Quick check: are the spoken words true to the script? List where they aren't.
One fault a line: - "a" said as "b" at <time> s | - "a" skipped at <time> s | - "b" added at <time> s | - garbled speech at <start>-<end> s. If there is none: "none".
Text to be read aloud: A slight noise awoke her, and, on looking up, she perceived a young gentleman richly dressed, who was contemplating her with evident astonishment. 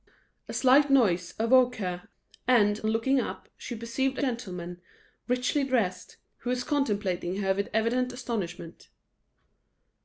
- "on" skipped at 2.8 s
- "young" skipped at 4.2 s